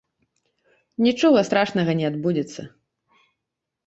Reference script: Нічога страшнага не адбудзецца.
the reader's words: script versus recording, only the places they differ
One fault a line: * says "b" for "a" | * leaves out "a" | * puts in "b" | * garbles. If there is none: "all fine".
all fine